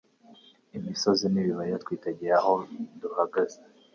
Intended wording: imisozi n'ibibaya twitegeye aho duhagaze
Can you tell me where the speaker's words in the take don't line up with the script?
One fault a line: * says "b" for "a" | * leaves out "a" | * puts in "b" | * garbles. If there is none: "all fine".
all fine